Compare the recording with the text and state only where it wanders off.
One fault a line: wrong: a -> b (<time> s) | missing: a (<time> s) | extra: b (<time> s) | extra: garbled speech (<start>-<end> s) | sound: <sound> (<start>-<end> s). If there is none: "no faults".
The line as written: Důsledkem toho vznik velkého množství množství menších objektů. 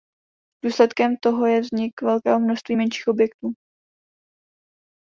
extra: je (1.4 s)
missing: množství (2.8 s)